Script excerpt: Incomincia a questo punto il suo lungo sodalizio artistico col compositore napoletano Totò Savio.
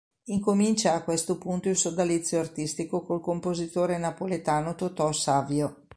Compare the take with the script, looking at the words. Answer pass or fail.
fail